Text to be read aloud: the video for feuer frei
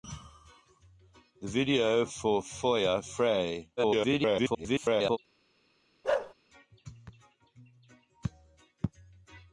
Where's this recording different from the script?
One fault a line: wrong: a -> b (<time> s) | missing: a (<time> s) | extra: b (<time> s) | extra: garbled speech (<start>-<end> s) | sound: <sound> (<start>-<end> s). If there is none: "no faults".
extra: garbled speech (3.8-5.2 s)
sound: bark (6.0-6.3 s)